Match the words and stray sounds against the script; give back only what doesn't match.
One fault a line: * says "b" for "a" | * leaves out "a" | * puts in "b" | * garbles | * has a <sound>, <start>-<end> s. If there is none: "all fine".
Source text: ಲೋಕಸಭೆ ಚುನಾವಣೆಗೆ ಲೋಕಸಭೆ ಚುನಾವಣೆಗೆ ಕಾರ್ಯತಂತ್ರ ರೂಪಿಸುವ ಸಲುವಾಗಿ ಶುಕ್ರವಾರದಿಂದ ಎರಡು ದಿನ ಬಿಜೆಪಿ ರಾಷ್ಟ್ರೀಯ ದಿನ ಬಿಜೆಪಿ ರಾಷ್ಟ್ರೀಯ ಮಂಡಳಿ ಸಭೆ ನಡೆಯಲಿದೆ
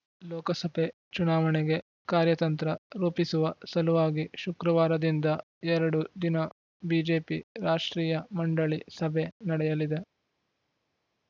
* leaves out "ಲೋಕಸಭೆ ಚುನಾವಣೆಗೆ"
* leaves out "ದಿನ ಬಿಜೆಪಿ ರಾಷ್ಟ್ರೀಯ"